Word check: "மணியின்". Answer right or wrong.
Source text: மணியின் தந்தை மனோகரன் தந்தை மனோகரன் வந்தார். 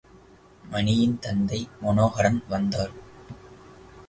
right